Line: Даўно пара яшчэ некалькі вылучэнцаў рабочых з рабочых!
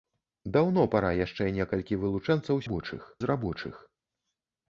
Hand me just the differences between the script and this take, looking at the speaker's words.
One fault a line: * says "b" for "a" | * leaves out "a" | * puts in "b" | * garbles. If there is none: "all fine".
all fine